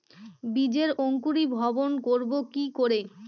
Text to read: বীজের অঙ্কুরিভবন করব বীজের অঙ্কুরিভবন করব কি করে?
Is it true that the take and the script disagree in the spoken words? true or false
true